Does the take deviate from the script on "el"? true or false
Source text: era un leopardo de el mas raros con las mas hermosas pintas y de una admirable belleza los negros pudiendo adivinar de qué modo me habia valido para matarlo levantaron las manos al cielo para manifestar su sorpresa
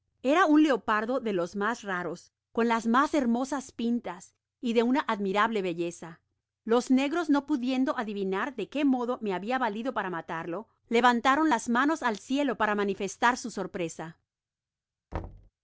true